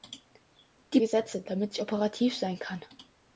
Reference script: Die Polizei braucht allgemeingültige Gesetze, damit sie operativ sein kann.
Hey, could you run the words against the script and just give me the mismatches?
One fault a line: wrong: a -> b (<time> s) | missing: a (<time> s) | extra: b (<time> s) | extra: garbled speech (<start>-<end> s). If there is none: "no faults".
missing: Polizei braucht allgemeingültige (1.0 s)